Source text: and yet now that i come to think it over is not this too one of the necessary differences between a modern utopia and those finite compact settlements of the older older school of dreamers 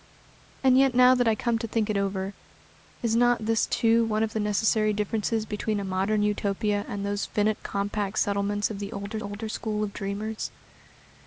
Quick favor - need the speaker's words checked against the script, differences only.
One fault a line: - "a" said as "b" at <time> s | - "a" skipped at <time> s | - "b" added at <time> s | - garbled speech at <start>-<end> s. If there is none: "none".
none